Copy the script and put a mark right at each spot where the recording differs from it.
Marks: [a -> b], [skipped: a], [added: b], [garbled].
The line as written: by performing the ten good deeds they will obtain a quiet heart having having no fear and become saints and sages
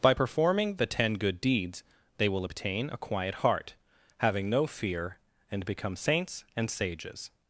by performing the ten good deeds they will obtain a quiet heart having [skipped: having] no fear and become saints and sages